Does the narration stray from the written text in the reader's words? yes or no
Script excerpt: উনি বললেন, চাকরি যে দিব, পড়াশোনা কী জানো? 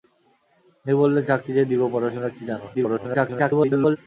yes